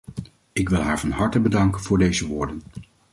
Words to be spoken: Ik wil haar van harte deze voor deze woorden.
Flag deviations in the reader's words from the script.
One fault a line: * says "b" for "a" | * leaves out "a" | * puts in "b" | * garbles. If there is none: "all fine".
* says "bedanken" for "deze"